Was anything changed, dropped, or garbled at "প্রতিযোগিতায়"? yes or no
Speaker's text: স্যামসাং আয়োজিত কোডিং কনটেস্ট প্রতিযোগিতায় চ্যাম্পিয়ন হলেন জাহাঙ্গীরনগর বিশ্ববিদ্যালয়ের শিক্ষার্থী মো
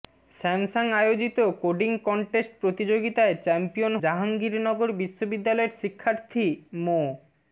no